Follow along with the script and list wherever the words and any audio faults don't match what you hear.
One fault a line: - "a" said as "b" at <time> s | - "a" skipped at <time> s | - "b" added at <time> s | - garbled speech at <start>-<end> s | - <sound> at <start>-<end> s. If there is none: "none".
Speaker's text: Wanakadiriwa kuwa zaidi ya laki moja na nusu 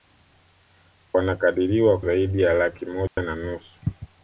- "kuwa" skipped at 2.0 s
- dropout at 3.1-3.2 s